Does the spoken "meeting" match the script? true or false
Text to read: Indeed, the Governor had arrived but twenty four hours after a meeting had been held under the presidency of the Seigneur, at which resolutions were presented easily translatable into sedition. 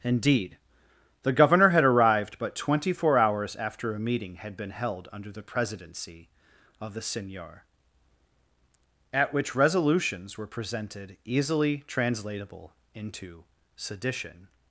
true